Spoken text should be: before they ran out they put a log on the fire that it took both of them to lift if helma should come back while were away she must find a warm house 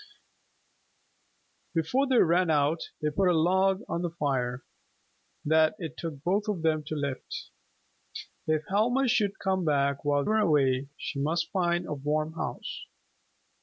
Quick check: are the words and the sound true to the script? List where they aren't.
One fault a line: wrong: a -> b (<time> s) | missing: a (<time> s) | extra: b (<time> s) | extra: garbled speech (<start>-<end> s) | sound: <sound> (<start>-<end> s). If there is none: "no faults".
no faults